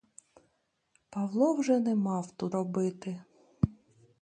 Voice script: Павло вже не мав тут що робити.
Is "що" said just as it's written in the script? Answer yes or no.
no